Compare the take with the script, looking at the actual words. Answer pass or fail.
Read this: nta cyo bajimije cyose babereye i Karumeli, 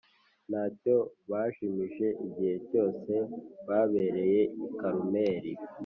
fail